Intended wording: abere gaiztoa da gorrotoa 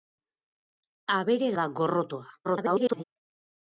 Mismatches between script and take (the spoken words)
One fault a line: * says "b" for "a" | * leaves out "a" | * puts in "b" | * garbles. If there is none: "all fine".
* leaves out "gaiztoa"
* garbles